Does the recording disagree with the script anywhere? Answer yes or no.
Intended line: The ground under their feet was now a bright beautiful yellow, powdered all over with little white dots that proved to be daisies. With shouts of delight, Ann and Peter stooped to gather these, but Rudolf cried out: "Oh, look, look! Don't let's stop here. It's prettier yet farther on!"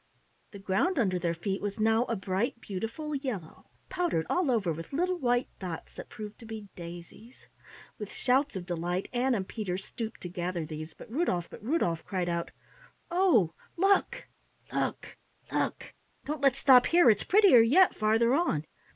yes